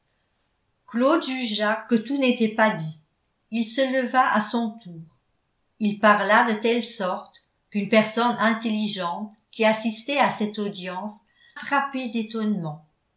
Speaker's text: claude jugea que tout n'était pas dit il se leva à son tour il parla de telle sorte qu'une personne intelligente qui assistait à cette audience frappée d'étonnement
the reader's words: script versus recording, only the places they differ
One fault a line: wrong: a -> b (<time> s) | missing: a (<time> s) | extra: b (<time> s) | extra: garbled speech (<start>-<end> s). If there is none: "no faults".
no faults